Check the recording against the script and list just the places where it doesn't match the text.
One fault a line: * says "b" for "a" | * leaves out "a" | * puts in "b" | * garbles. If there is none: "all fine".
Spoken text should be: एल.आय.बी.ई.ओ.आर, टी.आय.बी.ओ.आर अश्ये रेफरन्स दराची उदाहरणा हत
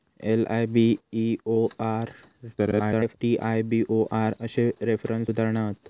* garbles
* leaves out "दराची"